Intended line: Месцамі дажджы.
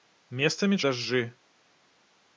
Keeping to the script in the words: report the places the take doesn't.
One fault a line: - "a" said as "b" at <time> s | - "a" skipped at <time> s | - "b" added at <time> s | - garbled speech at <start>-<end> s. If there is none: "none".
none